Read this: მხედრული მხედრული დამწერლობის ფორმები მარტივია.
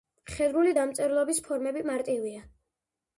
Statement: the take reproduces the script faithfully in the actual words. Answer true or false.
false